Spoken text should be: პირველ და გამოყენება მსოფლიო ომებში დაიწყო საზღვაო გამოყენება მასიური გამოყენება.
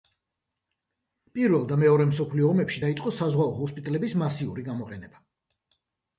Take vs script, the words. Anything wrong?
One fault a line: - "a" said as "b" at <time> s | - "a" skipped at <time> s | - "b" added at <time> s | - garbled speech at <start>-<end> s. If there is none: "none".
- "გამოყენება" said as "მეორე" at 1.8 s
- "გამოყენება" said as "ჰოსპიტალების" at 3.6 s